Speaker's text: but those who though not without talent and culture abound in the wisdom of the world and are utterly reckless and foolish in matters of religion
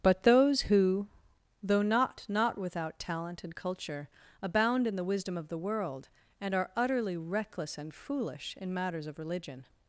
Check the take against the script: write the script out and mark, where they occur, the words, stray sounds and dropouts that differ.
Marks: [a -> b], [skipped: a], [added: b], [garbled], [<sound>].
but those who though not [added: not] without talent and culture abound in the wisdom of the world and are utterly reckless and foolish in matters of religion